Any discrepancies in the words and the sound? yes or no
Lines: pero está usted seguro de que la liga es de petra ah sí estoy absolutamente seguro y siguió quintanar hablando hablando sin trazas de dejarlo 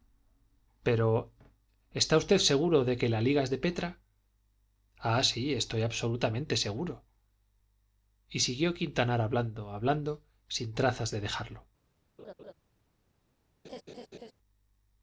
yes